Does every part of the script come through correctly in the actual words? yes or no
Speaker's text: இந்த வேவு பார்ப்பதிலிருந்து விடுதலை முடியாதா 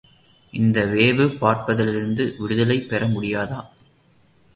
no